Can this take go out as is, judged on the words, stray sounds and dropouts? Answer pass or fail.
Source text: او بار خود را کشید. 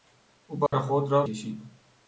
fail